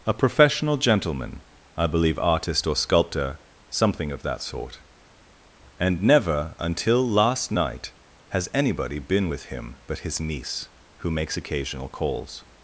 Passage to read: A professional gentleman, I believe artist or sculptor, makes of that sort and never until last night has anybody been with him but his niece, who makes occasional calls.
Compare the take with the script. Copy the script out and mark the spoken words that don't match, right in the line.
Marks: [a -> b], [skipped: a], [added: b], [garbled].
A professional gentleman, I believe artist or sculptor, [makes -> something] of that sort and never until last night has anybody been with him but his niece, who makes occasional calls.